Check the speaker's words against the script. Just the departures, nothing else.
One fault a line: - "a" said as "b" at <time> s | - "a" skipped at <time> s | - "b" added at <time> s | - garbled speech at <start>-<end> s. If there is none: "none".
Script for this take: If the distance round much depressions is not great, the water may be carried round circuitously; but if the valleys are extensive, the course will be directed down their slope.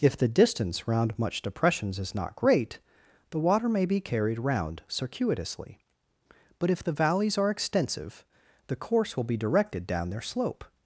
none